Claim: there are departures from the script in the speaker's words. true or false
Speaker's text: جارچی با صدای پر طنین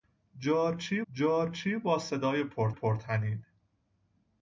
true